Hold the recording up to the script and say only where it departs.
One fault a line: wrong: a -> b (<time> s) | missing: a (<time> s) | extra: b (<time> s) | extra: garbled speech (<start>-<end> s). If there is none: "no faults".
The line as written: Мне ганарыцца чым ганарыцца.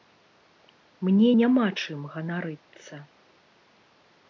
wrong: ганарыцца -> няма (1.4 s)